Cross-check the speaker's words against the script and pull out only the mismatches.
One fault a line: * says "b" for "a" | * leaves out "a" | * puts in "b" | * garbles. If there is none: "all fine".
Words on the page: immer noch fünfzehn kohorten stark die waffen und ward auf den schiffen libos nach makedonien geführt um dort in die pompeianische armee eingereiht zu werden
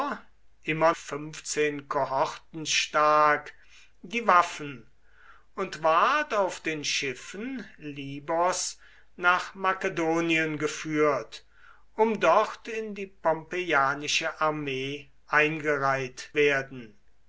* leaves out "noch"
* leaves out "zu"